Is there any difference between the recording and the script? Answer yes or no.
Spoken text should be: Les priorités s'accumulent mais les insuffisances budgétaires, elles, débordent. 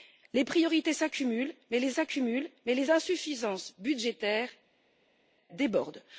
yes